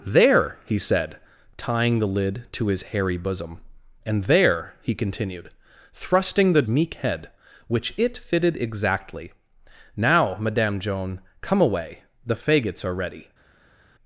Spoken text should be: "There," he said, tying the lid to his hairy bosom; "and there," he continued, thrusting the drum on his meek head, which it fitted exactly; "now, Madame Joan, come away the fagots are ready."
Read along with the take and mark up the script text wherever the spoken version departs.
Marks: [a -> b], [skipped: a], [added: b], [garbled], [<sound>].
"There," he said, tying the lid to his hairy bosom; "and there," he continued, thrusting the [skipped: drum on his] meek head, which it fitted exactly; "now, Madame Joan, come away the fagots are ready."